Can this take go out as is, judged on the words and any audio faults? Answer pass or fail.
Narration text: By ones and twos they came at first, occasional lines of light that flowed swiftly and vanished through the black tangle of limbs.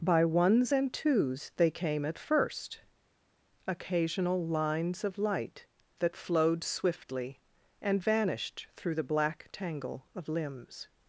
pass